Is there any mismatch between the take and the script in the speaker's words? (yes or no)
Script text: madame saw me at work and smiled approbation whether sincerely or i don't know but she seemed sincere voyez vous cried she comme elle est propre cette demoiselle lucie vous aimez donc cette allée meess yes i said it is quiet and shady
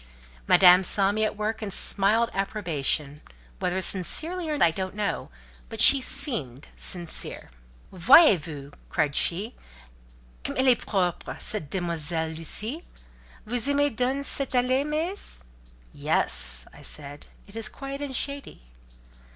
no